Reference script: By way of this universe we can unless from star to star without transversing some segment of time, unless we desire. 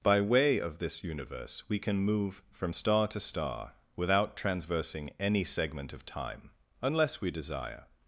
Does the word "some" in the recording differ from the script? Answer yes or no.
yes